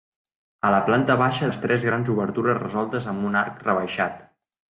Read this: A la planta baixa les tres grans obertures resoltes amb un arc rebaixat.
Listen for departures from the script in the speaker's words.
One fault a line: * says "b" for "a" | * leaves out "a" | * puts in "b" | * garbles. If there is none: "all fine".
all fine